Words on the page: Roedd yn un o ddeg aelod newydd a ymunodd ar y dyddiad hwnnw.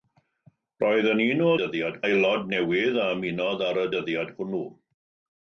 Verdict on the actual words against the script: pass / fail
fail